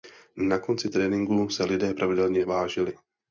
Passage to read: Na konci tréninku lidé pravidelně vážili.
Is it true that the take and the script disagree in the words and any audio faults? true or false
true